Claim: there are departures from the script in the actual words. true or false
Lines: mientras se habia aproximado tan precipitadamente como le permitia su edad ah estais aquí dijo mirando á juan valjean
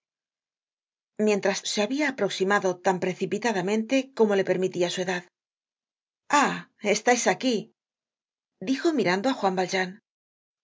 false